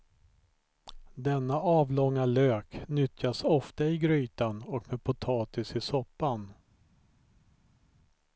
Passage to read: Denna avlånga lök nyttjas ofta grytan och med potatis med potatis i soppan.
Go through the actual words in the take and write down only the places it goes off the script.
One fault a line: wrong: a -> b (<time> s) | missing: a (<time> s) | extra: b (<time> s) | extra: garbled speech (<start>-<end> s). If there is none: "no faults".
extra: i (3.9 s)
missing: med potatis (5.8 s)